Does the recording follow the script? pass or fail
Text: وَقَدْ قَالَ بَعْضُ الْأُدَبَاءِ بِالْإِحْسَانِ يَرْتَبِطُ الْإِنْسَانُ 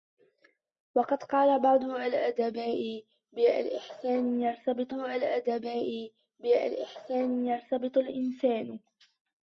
fail